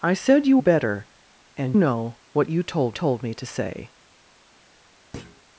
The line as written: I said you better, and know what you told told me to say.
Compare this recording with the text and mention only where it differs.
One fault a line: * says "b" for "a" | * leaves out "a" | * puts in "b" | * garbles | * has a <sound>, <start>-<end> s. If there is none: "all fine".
* has a thud, 5.1-5.4 s